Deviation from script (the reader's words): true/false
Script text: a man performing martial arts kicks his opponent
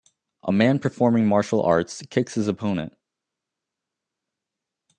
false